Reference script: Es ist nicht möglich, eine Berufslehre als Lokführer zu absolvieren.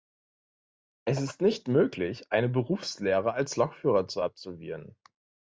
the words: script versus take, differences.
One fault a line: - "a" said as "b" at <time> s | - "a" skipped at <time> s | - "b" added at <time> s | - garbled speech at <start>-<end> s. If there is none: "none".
none